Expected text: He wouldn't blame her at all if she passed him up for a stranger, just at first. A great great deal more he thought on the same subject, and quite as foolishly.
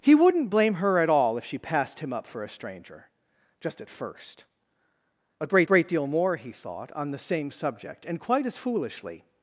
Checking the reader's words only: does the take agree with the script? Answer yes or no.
yes